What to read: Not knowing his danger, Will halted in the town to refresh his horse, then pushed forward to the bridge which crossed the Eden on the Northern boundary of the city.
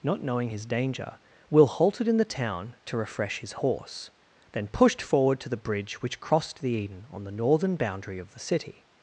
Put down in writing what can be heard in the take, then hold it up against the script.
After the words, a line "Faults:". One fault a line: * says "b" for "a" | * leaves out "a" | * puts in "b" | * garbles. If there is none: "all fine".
Not knowing his danger, Will halted in the town to refresh his horse, then pushed forward to the bridge which crossed the Eden on the Northern boundary of the city.
Faults:
all fine